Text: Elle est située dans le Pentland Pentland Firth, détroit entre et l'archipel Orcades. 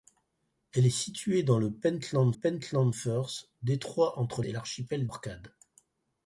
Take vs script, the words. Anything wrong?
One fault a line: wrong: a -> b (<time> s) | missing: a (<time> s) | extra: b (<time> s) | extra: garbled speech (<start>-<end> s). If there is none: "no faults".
no faults